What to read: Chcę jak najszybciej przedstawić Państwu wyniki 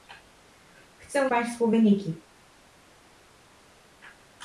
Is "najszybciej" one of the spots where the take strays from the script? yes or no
yes